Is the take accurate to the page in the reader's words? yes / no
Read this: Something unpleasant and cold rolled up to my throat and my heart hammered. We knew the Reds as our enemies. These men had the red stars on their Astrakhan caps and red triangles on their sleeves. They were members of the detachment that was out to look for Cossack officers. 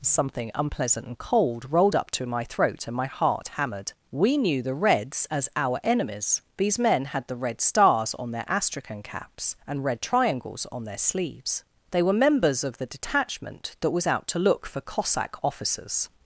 yes